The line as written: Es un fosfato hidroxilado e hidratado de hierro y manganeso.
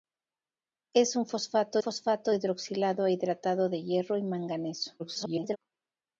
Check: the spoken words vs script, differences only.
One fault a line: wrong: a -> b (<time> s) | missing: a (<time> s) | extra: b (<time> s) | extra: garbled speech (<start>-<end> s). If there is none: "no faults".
extra: fosfato (1.8 s)
extra: garbled speech (5.0-5.6 s)